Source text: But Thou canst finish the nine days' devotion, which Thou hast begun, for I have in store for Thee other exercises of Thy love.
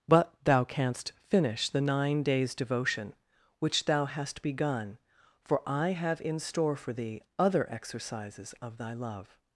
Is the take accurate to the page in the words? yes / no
yes